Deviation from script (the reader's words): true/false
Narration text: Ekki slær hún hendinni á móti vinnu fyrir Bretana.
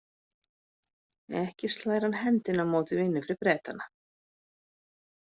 true